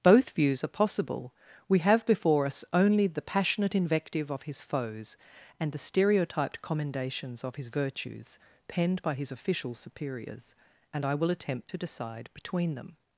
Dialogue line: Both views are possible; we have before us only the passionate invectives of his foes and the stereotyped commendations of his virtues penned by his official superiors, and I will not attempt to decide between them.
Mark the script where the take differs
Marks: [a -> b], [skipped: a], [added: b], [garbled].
Both views are possible; we have before us only the passionate [invectives -> invective] of his foes and the stereotyped commendations of his virtues penned by his official superiors, and I will [skipped: not] attempt to decide between them.